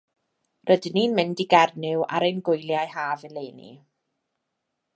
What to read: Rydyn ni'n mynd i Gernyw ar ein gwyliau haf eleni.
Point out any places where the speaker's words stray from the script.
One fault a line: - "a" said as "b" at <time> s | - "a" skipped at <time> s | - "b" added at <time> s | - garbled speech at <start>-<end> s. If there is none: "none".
none